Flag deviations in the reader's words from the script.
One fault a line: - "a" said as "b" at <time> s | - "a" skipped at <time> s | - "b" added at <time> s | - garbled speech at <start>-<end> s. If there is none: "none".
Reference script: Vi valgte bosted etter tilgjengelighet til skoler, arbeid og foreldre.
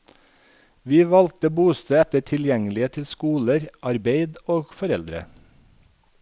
none